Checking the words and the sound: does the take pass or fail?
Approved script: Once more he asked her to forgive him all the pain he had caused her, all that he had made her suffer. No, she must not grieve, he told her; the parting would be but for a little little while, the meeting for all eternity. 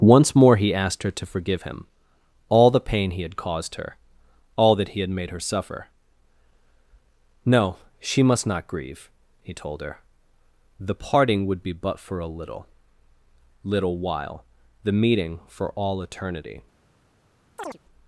fail